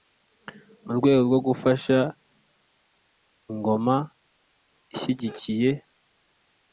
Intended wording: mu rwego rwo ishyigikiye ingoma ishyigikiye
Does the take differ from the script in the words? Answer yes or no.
yes